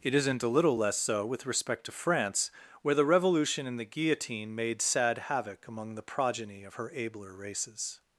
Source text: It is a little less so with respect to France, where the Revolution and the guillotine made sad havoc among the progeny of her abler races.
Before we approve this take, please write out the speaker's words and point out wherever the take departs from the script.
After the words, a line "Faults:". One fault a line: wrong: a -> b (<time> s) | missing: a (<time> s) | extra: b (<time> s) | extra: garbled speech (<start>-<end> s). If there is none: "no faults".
It isn't a little less so with respect to France, where the Revolution and the guillotine made sad havoc among the progeny of her abler races.
Faults:
wrong: is -> isn't (0.1 s)